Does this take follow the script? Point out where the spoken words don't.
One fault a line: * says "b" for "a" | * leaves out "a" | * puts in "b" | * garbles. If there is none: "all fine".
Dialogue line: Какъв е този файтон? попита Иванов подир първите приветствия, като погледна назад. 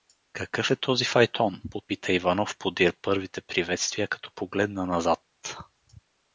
all fine